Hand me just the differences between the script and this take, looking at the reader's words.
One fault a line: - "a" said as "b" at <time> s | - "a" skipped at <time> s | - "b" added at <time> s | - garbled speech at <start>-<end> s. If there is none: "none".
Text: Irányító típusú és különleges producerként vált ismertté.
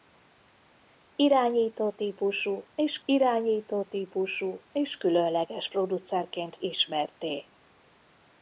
- "irányító típusú és" added at 3.0 s
- "vált" skipped at 6.6 s